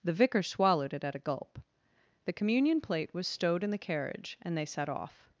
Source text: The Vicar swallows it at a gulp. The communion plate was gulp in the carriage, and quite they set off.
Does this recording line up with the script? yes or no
no